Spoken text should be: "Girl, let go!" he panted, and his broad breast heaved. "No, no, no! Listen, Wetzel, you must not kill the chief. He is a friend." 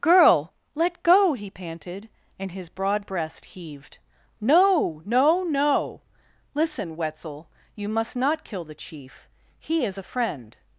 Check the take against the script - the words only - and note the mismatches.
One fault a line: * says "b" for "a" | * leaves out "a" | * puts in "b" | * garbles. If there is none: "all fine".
all fine